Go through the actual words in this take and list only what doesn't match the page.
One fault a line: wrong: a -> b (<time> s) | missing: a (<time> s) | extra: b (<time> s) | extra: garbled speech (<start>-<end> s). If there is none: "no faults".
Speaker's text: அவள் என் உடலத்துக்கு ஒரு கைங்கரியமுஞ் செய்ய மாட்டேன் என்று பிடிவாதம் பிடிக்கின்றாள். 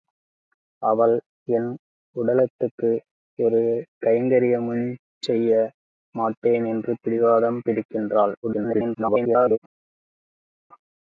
extra: garbled speech (8.4-9.6 s)